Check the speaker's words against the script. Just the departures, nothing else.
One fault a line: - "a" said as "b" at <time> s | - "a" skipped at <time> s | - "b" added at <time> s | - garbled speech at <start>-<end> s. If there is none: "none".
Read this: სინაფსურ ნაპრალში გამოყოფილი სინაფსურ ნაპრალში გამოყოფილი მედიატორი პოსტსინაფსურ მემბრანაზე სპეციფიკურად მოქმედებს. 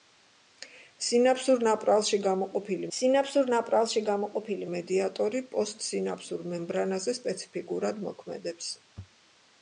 none